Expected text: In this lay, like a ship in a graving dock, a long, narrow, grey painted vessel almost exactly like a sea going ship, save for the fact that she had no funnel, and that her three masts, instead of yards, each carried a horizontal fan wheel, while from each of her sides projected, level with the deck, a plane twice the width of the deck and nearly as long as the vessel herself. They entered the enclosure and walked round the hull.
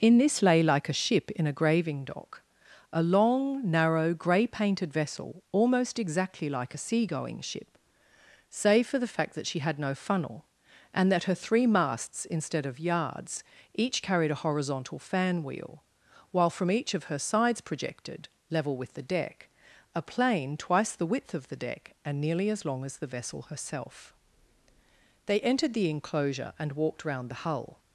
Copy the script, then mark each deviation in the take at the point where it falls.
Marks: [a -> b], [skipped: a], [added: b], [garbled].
In this lay, like a ship in a graving dock, a long, narrow, grey painted vessel almost exactly like a sea going ship, save for the fact that she had no funnel, and that her three masts, instead of yards, each carried a horizontal fan wheel, while from each of her sides projected, level with the deck, a plane twice the width of the deck and nearly as long as the vessel herself. They entered the enclosure and walked round the hull.